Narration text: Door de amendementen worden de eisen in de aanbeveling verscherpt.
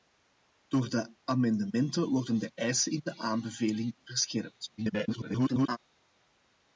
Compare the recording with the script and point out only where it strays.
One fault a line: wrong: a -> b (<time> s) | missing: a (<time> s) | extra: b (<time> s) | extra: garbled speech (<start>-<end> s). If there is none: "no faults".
extra: garbled speech (4.8-5.8 s)